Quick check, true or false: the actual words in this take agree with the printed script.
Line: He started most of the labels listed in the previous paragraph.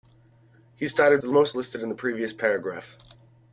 false